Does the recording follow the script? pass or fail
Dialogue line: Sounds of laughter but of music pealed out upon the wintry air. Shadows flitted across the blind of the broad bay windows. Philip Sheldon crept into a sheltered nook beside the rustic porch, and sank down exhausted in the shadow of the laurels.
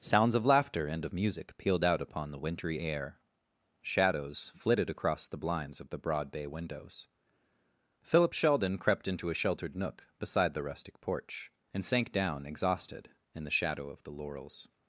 fail